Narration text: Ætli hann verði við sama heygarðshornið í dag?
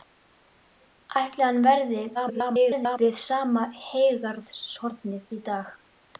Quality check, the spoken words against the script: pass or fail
fail